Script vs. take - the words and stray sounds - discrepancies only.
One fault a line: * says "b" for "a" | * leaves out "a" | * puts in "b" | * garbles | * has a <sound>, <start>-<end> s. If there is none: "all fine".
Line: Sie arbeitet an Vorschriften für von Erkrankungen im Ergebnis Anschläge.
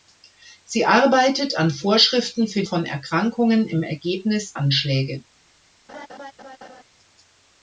* has a laugh, 5.9-6.8 s